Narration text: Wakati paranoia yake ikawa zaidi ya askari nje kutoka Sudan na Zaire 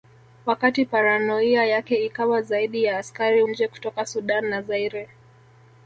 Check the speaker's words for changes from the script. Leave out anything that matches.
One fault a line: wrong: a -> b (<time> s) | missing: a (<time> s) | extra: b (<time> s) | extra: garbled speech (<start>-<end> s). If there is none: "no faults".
no faults